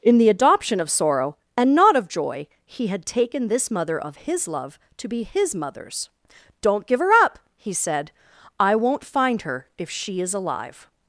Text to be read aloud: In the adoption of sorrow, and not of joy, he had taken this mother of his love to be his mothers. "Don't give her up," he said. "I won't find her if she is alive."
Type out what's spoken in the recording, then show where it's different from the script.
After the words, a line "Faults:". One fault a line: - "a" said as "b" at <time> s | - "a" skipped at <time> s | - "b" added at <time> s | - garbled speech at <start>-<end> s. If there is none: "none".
In the adoption of sorrow, and not of joy, he had taken this mother of his love to be his mothers. "Don't give her up," he said. "I won't find her if she is alive."
Faults:
none